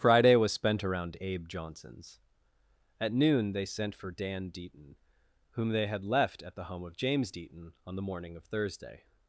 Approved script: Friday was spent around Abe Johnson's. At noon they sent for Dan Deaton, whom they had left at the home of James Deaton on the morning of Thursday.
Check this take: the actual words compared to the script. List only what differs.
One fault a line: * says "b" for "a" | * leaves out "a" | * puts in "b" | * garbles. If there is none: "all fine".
all fine